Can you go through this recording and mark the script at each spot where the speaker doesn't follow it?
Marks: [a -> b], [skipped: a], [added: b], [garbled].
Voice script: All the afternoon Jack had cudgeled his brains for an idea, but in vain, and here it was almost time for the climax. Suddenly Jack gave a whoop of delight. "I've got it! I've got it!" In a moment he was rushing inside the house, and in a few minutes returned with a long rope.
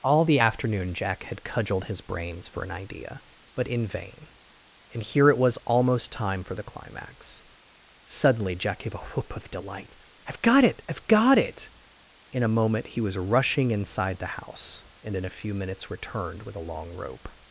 All the afternoon Jack had cudgeled his brains for an idea, but in vain, and here it was almost time for the climax. Suddenly Jack gave a whoop of delight. "I've got it! I've got it!" In a moment he was rushing inside the house, and in a few minutes returned with a long rope.